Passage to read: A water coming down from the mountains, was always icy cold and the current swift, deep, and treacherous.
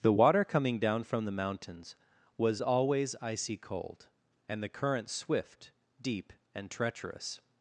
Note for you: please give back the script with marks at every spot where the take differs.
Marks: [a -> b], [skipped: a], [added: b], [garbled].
[A -> The] water coming down from the mountains, was always icy cold and the current swift, deep, and treacherous.